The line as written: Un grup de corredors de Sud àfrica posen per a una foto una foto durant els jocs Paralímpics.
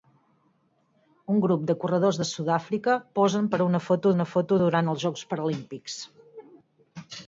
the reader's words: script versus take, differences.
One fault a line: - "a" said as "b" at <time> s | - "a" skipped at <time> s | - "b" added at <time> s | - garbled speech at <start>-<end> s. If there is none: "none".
none